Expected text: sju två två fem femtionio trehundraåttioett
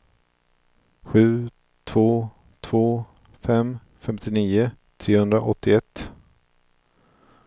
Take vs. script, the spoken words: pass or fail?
pass